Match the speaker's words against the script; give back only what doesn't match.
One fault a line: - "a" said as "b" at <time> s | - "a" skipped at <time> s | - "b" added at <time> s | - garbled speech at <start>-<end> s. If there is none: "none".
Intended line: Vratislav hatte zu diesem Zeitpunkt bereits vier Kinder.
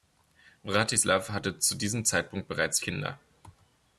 - "vier" skipped at 2.8 s